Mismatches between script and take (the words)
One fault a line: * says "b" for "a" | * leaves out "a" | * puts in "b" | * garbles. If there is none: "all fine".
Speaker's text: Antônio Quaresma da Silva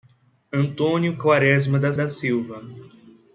* puts in "da"